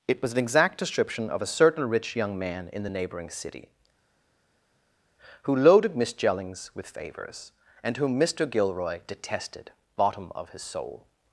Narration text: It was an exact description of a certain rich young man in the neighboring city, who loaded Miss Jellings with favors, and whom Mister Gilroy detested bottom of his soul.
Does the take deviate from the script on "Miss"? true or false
false